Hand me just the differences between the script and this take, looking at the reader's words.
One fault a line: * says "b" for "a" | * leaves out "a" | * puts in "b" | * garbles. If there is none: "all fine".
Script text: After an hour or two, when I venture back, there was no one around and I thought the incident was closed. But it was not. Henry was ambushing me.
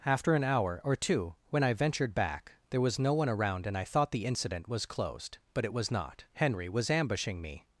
* says "ventured" for "venture"